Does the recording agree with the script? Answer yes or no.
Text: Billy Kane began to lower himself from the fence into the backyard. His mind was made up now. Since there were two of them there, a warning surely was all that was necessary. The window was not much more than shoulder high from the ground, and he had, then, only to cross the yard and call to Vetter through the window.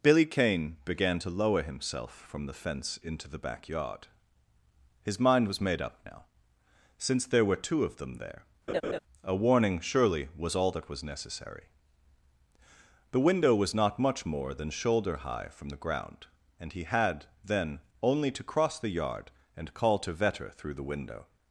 yes